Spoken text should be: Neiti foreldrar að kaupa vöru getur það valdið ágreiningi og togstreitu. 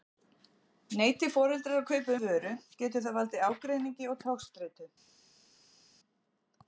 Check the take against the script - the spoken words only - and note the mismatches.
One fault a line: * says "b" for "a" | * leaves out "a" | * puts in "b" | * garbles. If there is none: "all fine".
all fine